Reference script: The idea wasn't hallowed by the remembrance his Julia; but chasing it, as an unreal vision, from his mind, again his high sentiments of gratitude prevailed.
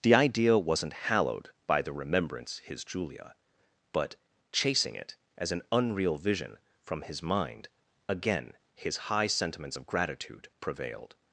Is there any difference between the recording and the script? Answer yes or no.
no